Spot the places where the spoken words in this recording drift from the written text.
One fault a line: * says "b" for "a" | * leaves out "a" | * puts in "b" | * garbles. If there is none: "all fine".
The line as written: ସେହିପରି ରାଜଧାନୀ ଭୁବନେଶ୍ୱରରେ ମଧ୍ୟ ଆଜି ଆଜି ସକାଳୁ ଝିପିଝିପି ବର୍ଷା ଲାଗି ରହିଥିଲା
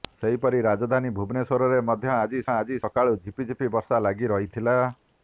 all fine